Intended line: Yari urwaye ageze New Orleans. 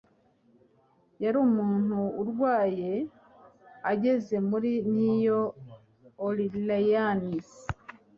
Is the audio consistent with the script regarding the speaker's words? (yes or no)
no